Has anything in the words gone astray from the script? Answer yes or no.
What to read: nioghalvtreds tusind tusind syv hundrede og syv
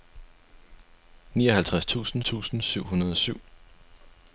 no